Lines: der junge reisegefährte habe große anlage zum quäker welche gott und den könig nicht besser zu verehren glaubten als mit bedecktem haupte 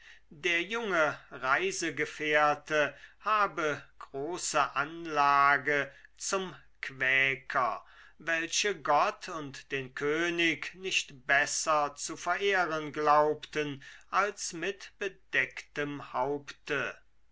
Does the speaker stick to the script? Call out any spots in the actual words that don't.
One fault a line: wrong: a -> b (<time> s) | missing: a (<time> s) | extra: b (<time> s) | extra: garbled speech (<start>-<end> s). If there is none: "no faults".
no faults